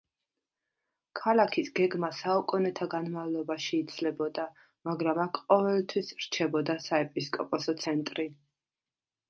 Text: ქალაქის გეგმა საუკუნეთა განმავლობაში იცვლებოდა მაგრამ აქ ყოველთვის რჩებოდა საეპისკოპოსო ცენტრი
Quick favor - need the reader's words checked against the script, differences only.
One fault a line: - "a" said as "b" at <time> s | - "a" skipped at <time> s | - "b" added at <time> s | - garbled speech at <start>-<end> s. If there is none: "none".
none